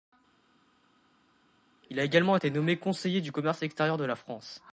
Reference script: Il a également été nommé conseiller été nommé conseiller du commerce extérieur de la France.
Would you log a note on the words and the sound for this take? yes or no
yes